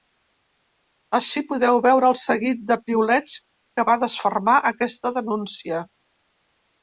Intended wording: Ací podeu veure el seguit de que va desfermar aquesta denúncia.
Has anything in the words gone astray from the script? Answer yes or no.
yes